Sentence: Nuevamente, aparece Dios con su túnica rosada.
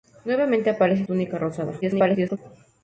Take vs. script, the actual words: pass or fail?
fail